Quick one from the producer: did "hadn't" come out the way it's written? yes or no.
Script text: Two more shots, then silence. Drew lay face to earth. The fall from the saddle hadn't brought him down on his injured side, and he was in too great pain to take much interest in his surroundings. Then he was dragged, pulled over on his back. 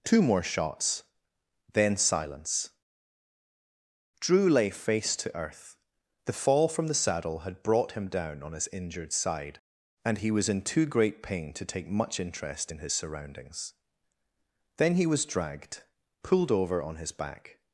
no